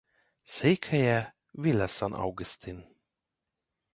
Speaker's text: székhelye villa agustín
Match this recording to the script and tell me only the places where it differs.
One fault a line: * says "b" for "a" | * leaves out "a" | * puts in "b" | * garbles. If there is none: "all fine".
* puts in "san"